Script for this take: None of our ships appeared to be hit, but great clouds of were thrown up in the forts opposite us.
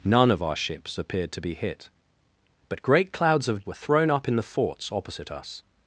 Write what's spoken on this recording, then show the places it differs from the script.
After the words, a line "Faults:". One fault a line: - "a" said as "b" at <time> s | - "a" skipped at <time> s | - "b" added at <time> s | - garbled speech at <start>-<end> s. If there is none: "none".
None of our ships appeared to be hit, but great clouds of were thrown up in the forts opposite us.
Faults:
none